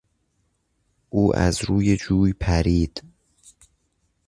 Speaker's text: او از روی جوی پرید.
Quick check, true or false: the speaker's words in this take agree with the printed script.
true